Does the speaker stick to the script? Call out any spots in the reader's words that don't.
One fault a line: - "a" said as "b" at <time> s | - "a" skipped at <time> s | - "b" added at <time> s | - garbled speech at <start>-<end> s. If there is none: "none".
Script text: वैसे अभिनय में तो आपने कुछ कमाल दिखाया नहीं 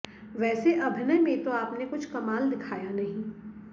none